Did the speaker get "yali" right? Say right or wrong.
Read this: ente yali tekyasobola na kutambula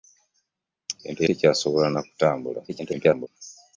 wrong